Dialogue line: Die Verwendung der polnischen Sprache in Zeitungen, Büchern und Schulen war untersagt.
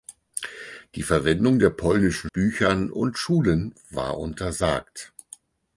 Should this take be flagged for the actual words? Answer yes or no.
yes